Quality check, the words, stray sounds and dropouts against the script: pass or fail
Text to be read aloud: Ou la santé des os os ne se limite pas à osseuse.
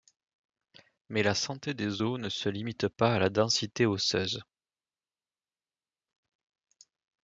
fail